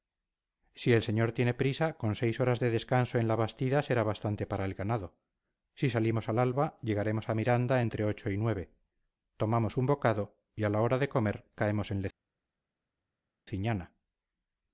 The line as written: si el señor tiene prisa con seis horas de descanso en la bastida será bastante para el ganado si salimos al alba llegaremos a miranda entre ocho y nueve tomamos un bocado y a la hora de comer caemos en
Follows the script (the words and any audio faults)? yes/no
yes